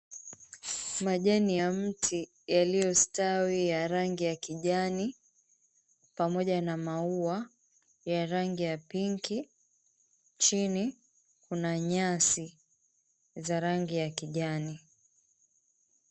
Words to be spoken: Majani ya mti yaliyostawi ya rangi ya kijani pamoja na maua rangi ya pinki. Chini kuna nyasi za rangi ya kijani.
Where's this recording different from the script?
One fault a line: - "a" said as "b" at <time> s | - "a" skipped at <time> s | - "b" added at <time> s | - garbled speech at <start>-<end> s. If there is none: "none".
- "ya" added at 8.0 s